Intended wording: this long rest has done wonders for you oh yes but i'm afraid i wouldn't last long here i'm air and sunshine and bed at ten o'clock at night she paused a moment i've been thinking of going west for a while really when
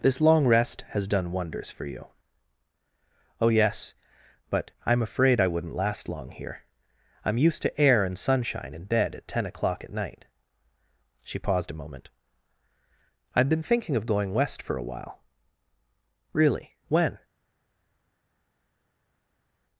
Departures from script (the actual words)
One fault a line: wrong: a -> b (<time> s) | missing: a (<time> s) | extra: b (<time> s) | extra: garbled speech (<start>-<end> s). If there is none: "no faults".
extra: used to (7.4 s)